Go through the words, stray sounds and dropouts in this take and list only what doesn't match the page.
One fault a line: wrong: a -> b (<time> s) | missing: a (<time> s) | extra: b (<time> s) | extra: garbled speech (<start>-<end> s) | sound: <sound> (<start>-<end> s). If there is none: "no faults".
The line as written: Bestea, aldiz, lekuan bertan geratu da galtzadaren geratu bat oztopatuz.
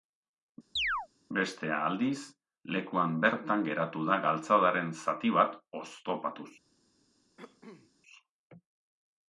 sound: chirp (0.8-1.1 s)
wrong: geratu -> zati (5.1 s)
sound: cough (7.4-7.9 s)